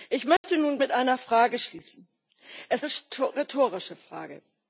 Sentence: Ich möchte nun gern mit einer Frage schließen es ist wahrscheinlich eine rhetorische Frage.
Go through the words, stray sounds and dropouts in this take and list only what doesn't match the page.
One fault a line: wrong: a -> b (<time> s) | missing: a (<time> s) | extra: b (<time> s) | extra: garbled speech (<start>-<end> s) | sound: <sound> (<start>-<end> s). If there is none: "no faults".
sound: dropout (0.4-0.4 s)
missing: gern (0.8 s)
missing: ist wahrscheinlich eine (2.8 s)